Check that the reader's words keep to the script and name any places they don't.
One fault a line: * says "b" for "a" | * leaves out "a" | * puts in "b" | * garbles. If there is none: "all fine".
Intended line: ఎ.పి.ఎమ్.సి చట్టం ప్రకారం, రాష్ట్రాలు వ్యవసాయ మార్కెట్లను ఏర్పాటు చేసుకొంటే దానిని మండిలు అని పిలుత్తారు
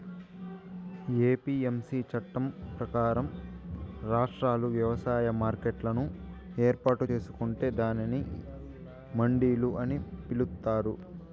all fine